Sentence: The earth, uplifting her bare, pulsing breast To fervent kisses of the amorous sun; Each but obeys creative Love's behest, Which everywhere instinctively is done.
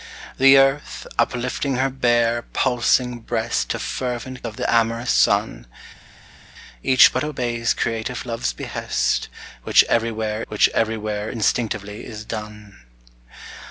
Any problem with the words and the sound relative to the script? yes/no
yes